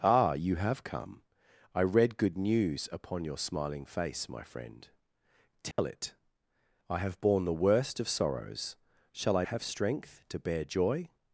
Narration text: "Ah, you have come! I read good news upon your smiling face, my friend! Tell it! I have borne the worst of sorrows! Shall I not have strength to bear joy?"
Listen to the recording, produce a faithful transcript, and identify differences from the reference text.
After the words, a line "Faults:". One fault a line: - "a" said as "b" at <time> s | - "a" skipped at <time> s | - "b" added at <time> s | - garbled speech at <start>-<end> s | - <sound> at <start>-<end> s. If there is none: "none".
"Ah, you have come! I read good news upon your smiling face, my friend! Tell it! I have borne the worst of sorrows! Shall I have strength to bear joy?"
Faults:
- dropout at 5.7-5.8 s
- "not" skipped at 9.4 s